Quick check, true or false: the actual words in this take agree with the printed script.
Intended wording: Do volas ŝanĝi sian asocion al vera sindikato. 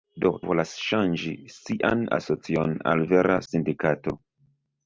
true